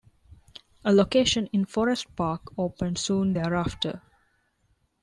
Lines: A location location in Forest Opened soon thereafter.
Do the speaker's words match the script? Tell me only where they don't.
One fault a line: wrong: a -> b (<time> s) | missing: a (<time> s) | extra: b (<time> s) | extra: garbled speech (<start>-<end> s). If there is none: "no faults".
missing: location (1.5 s)
extra: Park (2.1 s)